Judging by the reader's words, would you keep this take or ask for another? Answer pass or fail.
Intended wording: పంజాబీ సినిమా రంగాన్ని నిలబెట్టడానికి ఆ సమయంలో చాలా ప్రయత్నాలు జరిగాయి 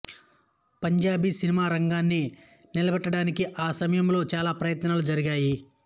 pass